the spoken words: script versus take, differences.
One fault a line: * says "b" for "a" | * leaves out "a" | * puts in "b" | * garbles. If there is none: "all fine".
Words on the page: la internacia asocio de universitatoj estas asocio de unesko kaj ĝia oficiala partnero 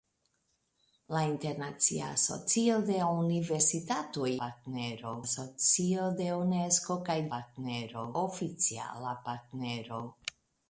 * says "partnero" for "estas"
* says "partnero" for "ĝia"